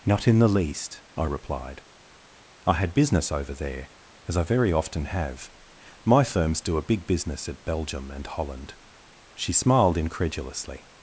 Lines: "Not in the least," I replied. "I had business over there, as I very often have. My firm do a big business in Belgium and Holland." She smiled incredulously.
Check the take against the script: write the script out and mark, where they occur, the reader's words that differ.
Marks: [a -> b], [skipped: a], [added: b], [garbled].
"Not in the least," I replied. "I had business over there, as I very often have. My [firm -> firms] do a big business [in -> at] Belgium and Holland." She smiled incredulously.